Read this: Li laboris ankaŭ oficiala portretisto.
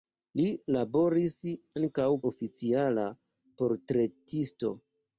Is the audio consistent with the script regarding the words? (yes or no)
yes